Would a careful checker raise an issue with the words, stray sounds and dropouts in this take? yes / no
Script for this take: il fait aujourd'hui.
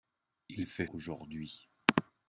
no